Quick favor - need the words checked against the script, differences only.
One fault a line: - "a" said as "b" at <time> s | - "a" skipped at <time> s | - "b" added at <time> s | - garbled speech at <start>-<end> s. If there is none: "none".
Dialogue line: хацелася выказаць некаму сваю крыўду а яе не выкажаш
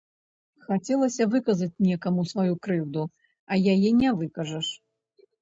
none